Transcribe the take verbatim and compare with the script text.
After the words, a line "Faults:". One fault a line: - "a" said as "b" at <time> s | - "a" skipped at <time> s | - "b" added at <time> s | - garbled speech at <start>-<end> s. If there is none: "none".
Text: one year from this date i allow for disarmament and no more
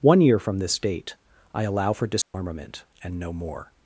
one year from this date i allow for disarmament and no more
Faults:
none